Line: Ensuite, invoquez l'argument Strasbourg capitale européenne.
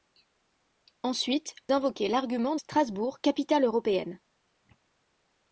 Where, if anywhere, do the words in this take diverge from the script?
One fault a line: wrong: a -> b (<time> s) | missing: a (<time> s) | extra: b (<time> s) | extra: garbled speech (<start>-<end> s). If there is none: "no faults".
no faults